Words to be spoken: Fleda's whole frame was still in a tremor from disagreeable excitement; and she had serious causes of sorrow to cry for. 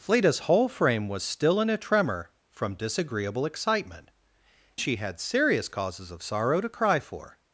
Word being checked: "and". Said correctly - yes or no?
no